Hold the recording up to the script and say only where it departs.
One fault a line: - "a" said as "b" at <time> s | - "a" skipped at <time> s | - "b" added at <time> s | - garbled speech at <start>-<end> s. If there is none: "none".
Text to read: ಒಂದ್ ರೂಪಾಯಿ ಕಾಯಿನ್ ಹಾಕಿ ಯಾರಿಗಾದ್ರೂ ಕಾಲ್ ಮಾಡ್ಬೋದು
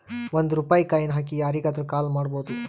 none